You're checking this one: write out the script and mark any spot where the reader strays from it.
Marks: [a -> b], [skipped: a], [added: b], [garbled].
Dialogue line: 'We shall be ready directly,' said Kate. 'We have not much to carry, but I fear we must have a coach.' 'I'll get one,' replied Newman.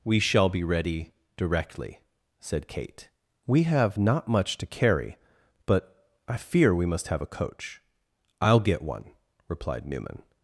'We shall be ready directly,' said Kate. 'We have not much to carry, but I fear we must have a coach.' 'I'll get one,' replied Newman.